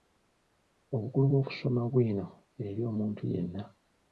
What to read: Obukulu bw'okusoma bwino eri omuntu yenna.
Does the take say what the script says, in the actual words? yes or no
yes